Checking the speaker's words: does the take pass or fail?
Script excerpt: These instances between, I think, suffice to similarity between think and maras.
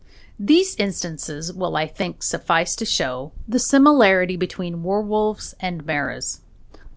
fail